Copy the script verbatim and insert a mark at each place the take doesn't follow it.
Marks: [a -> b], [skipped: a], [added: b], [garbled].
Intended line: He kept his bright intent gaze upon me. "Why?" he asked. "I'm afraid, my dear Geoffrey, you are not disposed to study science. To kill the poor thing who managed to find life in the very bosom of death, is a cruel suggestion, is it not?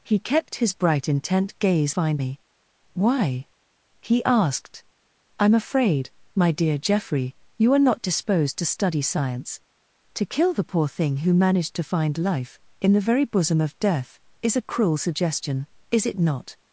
He kept his bright intent gaze [upon -> find] me. "Why?" he asked. "I'm afraid, my dear Geoffrey, you are not disposed to study science. To kill the poor thing who managed to find life in the very bosom of death, is a cruel suggestion, is it not?